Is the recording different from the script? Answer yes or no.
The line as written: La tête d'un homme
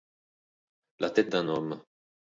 no